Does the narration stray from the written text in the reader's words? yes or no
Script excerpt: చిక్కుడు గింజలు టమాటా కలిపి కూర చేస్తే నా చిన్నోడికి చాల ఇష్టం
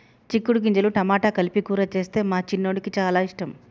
yes